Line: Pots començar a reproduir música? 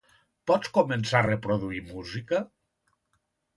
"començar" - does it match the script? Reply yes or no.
yes